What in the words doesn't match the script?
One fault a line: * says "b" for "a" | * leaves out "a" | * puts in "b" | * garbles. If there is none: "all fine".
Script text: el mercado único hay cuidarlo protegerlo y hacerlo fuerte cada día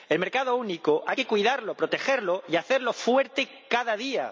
* puts in "que"